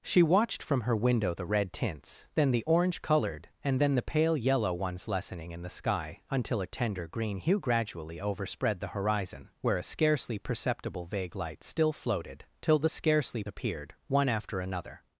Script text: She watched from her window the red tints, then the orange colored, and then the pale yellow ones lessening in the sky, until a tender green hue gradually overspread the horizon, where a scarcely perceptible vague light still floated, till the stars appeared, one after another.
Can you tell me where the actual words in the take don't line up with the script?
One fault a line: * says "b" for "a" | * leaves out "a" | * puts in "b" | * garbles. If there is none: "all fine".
* says "scarcely" for "stars"